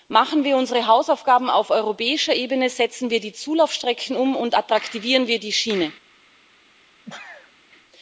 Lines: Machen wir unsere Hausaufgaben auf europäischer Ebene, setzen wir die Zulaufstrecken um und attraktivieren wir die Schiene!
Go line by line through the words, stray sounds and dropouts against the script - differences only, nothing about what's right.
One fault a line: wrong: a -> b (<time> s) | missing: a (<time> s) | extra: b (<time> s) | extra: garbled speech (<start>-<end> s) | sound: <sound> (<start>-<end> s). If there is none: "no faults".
sound: sneeze (7.0-7.6 s)